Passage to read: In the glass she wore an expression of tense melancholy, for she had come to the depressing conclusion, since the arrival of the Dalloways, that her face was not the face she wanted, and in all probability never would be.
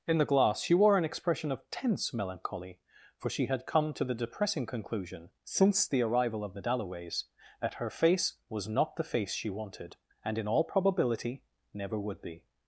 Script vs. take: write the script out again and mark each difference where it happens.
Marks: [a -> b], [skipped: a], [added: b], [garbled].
In the glass she wore an expression of tense melancholy, for she had come to the depressing conclusion, since the arrival of the Dalloways, that her face was not the face she wanted, and in all probability never would be.